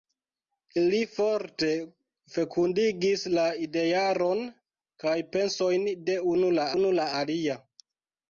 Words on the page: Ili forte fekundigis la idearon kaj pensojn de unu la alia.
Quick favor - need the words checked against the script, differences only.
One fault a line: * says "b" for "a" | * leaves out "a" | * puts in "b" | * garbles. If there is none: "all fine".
* puts in "unu la"